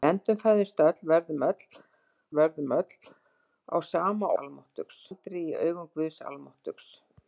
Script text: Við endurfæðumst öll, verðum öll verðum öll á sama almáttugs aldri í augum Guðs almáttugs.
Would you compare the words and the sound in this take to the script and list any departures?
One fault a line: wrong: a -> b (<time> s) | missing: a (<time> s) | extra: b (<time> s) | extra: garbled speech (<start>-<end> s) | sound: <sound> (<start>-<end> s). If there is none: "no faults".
no faults